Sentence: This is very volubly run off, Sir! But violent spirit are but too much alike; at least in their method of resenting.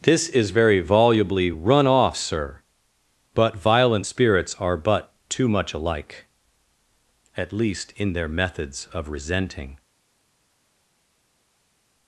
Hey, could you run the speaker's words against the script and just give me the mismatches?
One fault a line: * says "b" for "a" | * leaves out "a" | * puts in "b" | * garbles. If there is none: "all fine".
* says "spirits" for "spirit"
* says "methods" for "method"